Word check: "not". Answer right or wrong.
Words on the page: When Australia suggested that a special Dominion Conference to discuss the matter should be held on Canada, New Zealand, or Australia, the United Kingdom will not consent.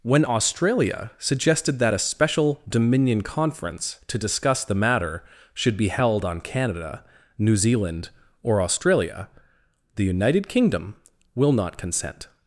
right